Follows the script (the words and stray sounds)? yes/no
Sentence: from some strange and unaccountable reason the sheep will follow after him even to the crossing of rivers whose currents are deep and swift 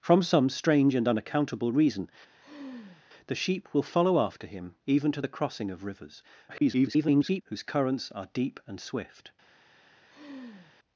no